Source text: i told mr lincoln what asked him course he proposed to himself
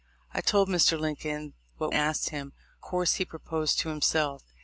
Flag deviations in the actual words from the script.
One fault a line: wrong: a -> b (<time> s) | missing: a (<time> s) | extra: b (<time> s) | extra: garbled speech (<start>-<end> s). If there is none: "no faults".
no faults